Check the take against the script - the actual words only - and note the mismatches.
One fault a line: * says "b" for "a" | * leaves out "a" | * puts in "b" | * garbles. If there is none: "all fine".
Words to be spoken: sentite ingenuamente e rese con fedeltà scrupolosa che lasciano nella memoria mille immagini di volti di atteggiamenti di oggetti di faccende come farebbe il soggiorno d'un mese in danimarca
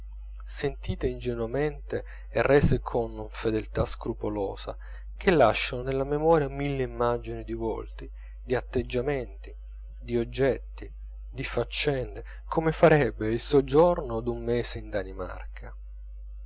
all fine